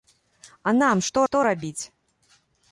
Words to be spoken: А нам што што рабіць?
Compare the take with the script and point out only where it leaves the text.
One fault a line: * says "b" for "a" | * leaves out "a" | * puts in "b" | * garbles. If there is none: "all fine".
all fine